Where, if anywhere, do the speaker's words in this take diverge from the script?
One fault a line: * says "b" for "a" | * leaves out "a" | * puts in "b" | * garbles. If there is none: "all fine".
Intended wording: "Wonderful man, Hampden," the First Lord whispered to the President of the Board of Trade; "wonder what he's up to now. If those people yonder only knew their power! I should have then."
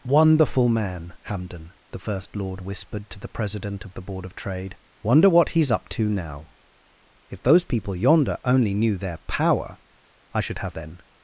all fine